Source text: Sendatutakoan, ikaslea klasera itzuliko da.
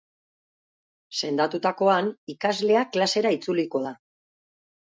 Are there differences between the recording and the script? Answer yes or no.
no